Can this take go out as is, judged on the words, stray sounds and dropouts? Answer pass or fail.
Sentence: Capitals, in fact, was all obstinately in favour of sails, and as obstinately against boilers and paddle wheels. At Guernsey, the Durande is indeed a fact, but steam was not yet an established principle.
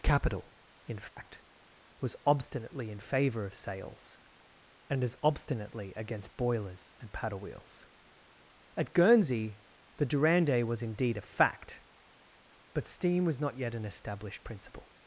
fail